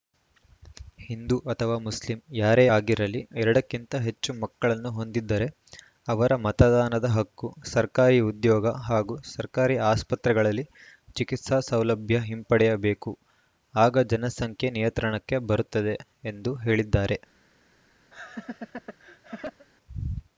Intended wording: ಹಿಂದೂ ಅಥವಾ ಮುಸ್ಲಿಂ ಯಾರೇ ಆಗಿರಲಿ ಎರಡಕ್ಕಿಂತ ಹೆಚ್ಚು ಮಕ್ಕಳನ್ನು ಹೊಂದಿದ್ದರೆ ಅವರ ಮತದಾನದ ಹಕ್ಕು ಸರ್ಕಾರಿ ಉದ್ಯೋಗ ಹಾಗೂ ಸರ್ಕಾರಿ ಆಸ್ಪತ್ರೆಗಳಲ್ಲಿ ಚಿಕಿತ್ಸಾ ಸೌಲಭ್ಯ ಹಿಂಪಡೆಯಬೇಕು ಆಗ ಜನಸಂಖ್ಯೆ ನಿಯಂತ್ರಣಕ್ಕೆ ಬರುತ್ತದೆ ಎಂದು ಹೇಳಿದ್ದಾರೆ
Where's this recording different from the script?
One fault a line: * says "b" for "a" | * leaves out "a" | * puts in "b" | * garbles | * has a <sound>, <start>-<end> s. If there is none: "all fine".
* has a laugh, 18.1-19.7 s